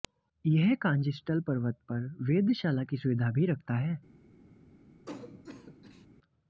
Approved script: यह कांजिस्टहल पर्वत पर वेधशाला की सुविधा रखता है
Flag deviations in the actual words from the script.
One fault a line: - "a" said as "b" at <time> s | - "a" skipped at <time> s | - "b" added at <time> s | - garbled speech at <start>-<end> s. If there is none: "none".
- "भी" added at 3.3 s